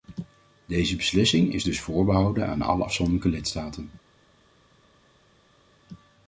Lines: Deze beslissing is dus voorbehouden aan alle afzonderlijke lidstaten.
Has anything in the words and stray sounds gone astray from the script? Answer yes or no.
no